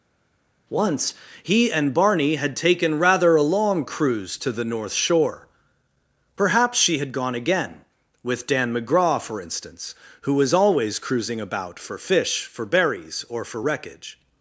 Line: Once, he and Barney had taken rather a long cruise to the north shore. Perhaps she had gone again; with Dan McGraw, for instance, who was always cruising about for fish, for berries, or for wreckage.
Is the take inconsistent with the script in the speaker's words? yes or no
no